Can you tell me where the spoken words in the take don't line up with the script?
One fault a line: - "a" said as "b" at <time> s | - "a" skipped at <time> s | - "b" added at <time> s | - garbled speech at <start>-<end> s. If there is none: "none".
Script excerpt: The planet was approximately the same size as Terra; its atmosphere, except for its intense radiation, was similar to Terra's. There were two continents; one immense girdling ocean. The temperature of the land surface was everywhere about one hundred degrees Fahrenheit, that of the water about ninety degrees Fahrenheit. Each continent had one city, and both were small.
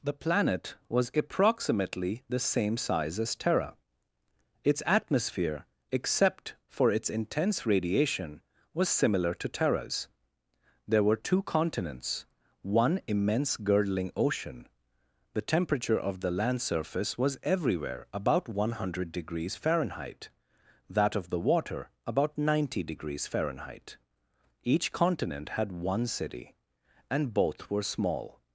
none